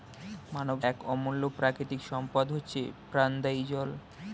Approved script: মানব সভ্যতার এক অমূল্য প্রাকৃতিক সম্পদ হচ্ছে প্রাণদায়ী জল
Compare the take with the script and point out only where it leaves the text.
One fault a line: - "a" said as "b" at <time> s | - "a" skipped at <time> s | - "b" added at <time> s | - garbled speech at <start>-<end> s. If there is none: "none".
- "সভ্যতার" skipped at 0.8 s